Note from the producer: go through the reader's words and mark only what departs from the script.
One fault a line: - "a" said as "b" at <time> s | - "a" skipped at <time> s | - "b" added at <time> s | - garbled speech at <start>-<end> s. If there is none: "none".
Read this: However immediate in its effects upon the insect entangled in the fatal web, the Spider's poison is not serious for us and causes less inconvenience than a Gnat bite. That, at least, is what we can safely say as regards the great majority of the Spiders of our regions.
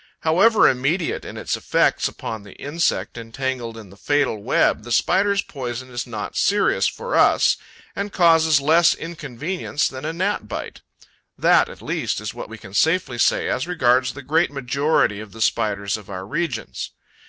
none